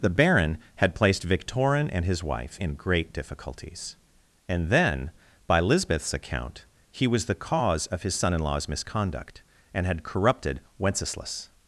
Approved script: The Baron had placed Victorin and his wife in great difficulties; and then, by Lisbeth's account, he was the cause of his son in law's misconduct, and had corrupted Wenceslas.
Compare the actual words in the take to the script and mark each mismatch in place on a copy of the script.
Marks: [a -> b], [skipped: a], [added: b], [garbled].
The Baron had placed Victorin and his wife in great difficulties; and then, by Lisbeth's account, he was the cause of his son in law's misconduct, and had corrupted Wenceslas.